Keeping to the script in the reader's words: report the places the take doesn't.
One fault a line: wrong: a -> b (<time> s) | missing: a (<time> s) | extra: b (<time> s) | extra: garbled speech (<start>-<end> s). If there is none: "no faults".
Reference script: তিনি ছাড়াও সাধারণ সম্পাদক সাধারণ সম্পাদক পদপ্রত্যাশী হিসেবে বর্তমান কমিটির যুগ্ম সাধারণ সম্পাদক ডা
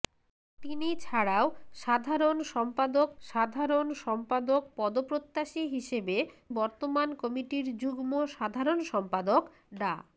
no faults